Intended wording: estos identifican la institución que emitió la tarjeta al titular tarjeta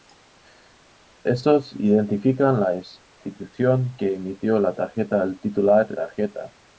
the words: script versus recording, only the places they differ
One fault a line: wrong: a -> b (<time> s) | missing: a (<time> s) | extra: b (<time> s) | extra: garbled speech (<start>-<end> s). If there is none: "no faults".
no faults